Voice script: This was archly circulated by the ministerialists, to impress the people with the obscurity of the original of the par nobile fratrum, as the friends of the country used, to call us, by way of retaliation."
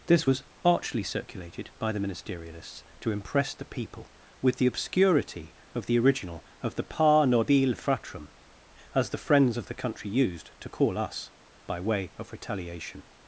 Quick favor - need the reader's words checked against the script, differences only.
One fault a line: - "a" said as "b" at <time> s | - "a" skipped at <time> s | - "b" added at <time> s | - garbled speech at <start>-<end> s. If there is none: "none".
none